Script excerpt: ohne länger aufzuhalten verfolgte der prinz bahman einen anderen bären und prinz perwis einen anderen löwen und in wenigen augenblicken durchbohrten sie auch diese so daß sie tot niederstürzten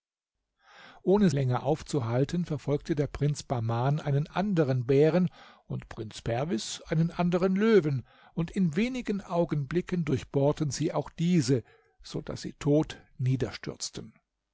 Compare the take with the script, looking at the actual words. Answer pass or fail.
pass